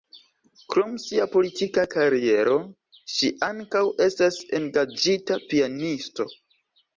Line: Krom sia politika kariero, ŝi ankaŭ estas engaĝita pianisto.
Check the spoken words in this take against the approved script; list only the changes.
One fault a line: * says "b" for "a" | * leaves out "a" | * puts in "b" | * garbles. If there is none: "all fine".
all fine